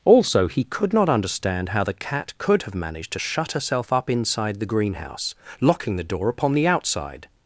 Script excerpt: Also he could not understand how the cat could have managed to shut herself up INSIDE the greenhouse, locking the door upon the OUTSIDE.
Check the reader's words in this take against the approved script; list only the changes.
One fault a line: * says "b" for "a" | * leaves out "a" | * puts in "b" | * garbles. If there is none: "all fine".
all fine